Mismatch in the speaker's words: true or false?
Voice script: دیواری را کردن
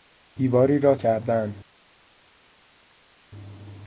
false